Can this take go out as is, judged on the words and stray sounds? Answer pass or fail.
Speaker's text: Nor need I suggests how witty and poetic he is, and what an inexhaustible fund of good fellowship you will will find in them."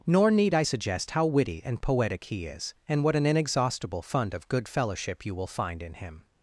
fail